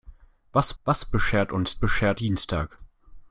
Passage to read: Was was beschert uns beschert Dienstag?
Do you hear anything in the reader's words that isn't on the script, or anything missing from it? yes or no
no